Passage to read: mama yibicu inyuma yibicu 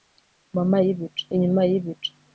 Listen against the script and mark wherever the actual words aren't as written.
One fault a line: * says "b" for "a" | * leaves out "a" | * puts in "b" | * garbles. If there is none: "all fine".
all fine